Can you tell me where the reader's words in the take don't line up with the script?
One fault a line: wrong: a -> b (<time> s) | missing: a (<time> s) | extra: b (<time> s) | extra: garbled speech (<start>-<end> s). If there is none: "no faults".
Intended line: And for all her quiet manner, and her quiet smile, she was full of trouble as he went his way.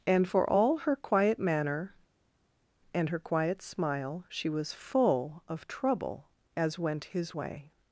missing: he (6.8 s)